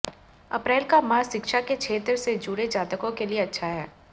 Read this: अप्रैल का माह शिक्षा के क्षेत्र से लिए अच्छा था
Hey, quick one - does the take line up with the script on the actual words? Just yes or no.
no